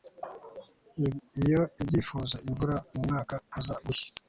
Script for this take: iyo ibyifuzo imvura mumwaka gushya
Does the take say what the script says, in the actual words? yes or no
no